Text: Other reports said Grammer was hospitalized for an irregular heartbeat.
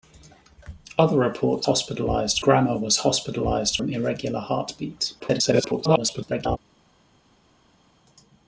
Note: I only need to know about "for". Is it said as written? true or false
false